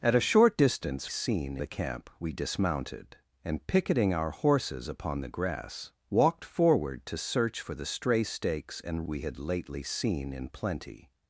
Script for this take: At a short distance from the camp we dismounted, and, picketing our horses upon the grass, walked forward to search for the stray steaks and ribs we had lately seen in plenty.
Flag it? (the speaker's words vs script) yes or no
yes